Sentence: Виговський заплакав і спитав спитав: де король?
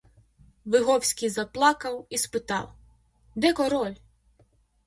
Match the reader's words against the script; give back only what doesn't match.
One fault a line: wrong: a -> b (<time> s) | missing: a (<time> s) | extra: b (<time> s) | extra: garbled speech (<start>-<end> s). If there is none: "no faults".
missing: спитав (2.7 s)